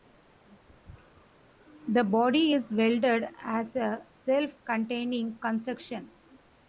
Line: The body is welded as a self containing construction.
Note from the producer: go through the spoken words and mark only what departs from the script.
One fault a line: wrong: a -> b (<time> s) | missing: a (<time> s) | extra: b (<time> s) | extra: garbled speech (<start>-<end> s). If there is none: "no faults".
no faults